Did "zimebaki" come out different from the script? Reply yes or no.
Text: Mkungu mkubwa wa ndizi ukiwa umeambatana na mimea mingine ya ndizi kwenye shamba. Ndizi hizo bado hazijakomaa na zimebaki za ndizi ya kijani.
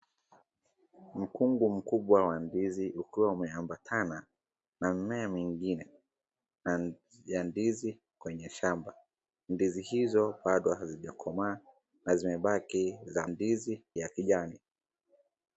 no